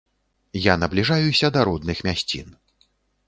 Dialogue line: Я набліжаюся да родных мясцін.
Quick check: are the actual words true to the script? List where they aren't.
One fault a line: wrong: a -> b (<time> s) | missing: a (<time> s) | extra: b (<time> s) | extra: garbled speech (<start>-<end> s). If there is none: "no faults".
no faults